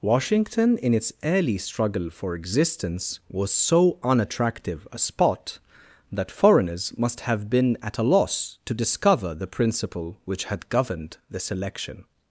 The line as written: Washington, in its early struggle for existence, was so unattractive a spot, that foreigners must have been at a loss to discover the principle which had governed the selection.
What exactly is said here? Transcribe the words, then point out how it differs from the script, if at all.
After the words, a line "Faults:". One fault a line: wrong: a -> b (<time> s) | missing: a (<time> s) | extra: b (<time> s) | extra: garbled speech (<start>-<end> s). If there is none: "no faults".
Washington, in its early struggle for existence, was so unattractive a spot, that foreigners must have been at a loss to discover the principle which had governed the selection.
Faults:
no faults